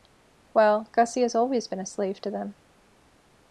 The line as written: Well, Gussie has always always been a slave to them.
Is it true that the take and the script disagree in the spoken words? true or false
true